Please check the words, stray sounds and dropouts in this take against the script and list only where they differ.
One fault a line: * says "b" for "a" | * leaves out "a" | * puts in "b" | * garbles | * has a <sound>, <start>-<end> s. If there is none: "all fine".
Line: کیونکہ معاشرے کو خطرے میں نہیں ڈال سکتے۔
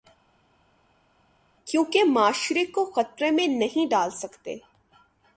all fine